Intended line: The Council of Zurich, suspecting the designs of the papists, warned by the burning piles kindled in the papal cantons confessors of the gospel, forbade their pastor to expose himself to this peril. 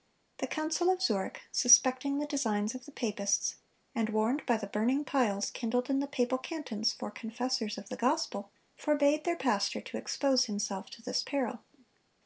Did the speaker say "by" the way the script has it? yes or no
yes